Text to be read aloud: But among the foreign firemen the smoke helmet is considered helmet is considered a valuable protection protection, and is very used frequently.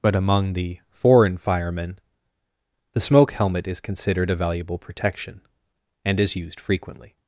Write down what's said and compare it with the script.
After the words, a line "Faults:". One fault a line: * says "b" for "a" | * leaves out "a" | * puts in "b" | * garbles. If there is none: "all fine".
But among the foreign firemen the smoke helmet is considered a valuable protection, and is used frequently.
Faults:
* leaves out "helmet is considered"
* leaves out "protection"
* leaves out "very"